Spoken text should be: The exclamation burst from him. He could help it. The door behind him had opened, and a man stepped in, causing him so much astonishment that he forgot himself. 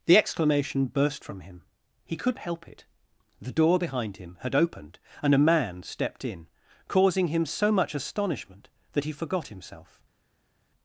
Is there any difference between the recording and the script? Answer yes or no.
no